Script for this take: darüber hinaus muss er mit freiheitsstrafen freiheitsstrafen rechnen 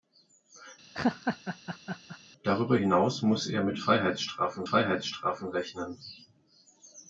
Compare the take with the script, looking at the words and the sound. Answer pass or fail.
fail